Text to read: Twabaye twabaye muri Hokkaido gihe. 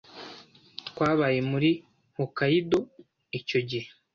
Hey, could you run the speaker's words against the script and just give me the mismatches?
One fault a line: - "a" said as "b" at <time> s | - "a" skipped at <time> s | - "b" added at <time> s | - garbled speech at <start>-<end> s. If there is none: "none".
- "twabaye" skipped at 1.4 s
- "icyo" added at 3.4 s